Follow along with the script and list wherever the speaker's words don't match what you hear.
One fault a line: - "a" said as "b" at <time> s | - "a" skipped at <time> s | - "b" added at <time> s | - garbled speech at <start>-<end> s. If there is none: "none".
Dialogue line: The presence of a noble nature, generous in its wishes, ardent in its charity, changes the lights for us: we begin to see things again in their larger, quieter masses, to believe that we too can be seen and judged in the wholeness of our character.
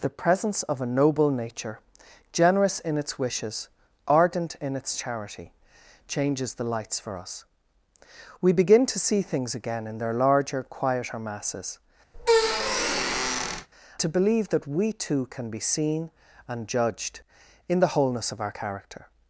none